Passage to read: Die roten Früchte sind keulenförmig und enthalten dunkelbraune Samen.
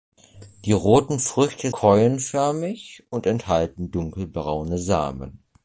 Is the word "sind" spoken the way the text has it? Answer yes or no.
no